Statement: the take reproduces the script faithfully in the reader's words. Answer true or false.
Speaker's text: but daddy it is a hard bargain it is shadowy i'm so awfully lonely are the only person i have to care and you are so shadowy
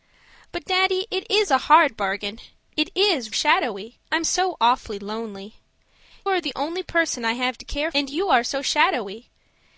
true